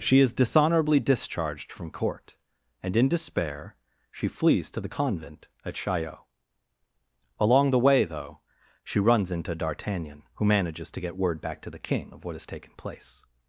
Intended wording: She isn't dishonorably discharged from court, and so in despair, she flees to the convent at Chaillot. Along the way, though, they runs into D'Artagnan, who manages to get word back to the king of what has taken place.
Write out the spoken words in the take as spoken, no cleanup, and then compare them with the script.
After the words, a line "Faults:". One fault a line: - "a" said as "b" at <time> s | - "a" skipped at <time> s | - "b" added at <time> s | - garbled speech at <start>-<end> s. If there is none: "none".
She is dishonorably discharged from court, and in despair, she flees to the convent at Chaillot. Along the way, though, she runs into D'Artagnan, who manages to get word back to the king of what has taken place.
Faults:
- "isn't" said as "is" at 0.2 s
- "so" skipped at 3.0 s
- "they" said as "she" at 8.8 s